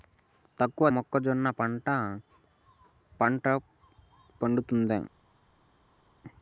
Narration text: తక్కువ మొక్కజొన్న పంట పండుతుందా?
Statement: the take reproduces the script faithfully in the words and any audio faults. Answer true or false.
true